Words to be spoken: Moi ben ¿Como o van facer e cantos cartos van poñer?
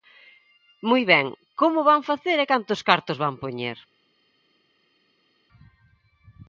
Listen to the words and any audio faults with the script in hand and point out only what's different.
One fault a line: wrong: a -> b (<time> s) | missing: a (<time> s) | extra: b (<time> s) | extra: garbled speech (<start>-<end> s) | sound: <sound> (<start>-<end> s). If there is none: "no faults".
no faults